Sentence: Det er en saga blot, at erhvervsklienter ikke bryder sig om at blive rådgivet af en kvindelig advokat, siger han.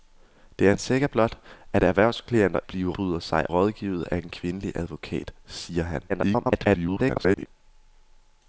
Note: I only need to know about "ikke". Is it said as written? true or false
false